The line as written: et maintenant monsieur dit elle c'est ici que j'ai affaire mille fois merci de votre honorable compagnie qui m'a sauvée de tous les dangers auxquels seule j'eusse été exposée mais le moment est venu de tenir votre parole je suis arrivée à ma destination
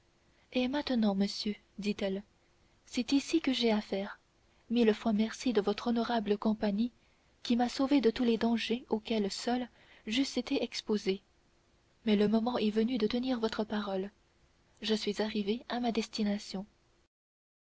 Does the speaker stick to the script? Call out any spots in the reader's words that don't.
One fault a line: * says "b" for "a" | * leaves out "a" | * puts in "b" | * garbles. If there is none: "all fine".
all fine